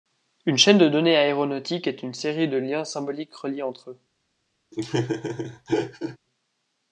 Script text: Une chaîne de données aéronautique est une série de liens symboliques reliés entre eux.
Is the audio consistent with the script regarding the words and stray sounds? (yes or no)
no